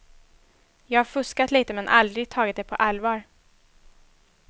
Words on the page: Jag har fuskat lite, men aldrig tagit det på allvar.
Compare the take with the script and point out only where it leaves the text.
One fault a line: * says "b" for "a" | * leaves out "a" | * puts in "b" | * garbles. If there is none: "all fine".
all fine